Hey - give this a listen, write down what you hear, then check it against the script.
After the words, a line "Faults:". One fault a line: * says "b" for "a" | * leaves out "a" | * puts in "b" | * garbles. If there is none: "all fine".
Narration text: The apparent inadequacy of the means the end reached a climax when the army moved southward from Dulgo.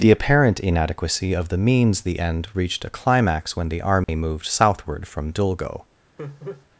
The apparent inadequacy of the means the end reached a climax when the army moved southward from Dulgo.
Faults:
all fine